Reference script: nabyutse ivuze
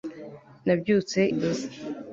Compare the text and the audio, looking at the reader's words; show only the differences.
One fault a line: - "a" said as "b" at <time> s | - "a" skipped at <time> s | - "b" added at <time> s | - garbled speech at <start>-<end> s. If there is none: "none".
none